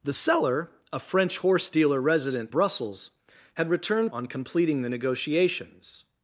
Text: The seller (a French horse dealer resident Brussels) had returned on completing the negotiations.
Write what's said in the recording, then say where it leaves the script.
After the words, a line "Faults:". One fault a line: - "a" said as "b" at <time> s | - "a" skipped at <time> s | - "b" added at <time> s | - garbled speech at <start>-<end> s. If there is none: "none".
The seller (a French horse dealer resident Brussels) had returned on completing the negotiations.
Faults:
none